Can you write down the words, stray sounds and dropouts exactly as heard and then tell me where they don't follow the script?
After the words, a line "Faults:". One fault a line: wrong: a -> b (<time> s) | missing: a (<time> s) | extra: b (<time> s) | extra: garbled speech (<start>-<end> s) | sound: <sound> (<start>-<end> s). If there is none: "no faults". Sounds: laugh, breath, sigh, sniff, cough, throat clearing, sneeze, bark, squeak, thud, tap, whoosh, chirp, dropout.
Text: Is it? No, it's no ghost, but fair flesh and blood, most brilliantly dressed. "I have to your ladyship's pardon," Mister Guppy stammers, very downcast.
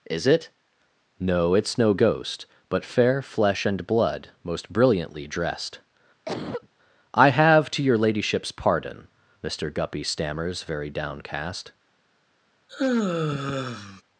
Is it? No, it's no ghost, but fair flesh and blood, most brilliantly dressed. "I have to your ladyship's pardon," Mister Guppy stammers, very downcast.
Faults:
sound: cough (6.2-6.7 s)
sound: sigh (12.7-14.0 s)